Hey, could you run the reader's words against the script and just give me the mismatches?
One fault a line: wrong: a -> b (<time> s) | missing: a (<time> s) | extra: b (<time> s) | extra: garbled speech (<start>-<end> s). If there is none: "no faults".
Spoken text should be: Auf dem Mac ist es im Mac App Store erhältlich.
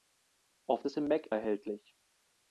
missing: dem Mac ist (0.8 s)
missing: App Store (1.3 s)